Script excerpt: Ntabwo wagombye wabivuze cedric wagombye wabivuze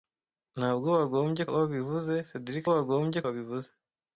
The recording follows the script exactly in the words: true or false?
true